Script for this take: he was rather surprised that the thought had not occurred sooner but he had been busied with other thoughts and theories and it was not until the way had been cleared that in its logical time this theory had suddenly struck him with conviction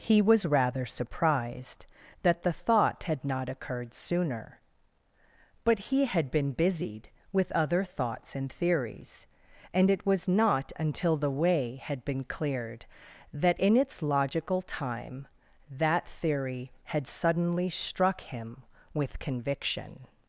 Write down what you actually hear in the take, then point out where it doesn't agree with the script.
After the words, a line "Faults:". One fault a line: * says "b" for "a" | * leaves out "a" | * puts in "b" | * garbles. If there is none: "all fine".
he was rather surprised that the thought had not occurred sooner but he had been busied with other thoughts and theories and it was not until the way had been cleared that in its logical time that theory had suddenly struck him with conviction
Faults:
* says "that" for "this"